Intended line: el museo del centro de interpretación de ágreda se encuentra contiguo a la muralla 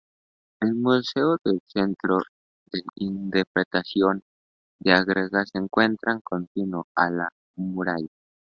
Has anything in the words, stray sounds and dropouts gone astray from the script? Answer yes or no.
no